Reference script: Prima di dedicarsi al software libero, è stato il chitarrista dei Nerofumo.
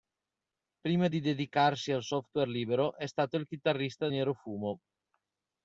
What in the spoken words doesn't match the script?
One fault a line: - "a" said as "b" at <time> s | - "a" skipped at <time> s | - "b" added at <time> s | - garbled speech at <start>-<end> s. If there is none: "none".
- "dei" skipped at 4.1 s